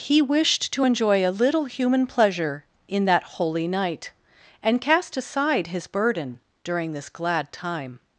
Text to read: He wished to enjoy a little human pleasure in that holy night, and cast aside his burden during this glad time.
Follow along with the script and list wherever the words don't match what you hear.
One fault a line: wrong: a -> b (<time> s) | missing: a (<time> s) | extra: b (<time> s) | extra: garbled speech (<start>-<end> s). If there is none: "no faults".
no faults